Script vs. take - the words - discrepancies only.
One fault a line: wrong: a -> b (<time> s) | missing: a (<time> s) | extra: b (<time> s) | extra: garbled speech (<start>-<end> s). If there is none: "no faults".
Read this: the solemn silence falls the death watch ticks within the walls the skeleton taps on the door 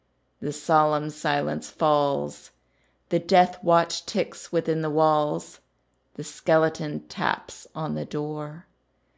no faults